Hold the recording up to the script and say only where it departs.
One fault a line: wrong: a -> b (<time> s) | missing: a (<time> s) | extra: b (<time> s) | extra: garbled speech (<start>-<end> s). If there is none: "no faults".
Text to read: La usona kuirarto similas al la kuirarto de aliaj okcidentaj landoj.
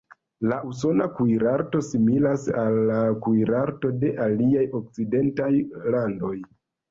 no faults